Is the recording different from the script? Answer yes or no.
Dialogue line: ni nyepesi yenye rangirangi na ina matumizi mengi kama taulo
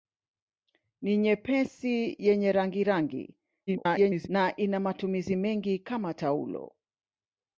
yes